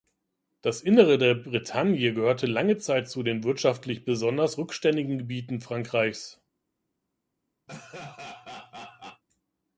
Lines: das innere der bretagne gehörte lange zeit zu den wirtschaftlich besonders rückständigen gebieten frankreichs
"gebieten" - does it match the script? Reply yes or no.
yes